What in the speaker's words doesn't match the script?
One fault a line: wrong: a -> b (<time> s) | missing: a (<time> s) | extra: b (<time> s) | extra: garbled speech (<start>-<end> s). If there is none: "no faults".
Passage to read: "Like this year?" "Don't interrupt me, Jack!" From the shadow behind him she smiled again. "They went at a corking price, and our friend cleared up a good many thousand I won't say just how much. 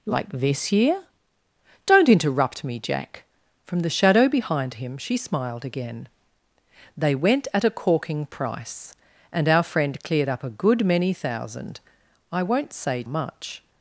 missing: just how (13.0 s)